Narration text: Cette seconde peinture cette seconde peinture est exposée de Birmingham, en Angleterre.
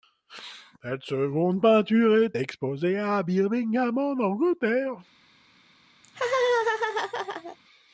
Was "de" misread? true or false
true